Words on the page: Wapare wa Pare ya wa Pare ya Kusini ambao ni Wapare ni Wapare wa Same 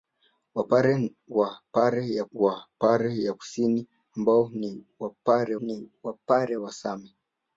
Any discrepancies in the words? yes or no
no